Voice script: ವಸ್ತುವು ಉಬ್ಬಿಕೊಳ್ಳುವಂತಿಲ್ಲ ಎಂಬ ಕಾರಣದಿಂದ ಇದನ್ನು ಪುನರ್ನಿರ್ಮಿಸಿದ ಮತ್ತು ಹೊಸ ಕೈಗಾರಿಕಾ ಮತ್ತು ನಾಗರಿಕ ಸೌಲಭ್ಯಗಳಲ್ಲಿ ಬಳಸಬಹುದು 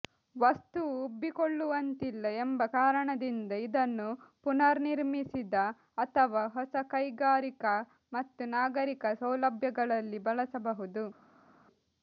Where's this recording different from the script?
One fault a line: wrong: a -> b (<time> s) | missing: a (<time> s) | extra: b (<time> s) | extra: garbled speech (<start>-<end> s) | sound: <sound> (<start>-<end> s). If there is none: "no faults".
wrong: ಮತ್ತು -> ಅಥವಾ (6.0 s)